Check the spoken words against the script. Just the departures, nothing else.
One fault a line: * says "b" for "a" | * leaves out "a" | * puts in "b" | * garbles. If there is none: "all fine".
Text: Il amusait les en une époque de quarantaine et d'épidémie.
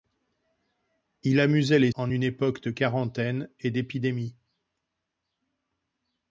all fine